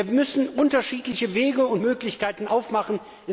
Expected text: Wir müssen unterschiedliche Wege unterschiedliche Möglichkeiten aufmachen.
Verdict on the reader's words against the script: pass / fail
fail